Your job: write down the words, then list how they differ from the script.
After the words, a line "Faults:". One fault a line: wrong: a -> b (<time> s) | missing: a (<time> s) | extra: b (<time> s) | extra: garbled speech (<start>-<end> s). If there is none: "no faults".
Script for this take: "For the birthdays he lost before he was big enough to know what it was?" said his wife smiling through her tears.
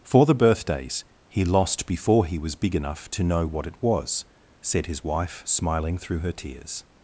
"For the birthdays he lost before he was big enough to know what it was?" said his wife smiling through her tears.
Faults:
no faults